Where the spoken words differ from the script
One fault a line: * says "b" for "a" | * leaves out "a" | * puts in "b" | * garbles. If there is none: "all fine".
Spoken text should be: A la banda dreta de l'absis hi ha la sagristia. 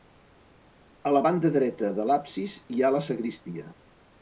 all fine